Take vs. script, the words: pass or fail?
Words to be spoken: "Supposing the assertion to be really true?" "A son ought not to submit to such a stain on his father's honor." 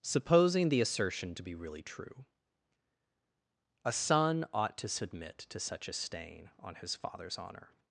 fail